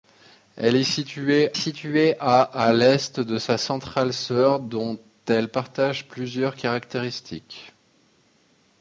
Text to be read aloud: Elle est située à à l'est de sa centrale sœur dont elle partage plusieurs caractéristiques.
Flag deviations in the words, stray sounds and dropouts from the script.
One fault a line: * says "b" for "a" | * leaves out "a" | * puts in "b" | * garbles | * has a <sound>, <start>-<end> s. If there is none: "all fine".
* puts in "située"